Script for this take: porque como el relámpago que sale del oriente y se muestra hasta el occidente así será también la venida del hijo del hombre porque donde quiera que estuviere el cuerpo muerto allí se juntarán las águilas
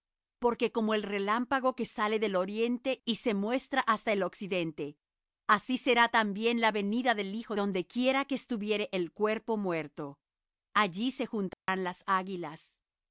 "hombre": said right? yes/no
no